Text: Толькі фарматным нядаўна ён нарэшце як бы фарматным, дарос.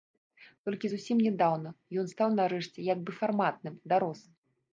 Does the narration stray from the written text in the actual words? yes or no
yes